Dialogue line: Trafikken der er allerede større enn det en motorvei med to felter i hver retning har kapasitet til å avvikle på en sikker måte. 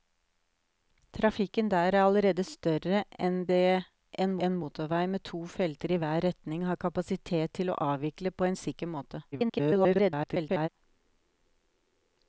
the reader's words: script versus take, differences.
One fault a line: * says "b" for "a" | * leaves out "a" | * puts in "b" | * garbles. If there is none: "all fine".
* puts in "en"
* garbles